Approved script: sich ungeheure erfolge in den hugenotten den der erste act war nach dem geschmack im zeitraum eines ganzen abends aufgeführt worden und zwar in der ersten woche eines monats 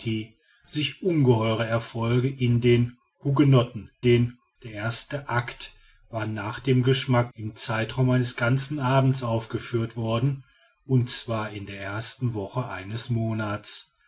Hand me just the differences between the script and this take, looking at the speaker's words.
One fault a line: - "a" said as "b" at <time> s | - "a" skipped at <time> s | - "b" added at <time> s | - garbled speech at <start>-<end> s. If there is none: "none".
none